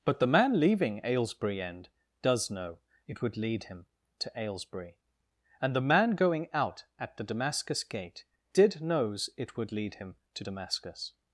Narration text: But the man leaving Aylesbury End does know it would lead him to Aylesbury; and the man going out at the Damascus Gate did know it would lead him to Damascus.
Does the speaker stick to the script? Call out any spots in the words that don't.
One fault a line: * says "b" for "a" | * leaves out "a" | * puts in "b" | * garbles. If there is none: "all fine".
* says "knows" for "know"